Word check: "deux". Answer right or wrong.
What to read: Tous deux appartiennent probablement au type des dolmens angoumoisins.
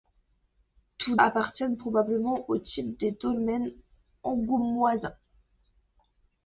wrong